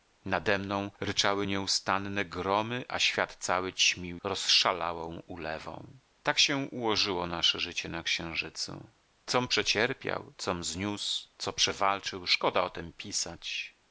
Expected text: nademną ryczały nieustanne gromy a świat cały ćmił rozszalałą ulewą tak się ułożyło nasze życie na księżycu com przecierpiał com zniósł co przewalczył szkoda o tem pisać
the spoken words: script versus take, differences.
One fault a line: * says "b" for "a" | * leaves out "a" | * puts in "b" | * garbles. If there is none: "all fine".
all fine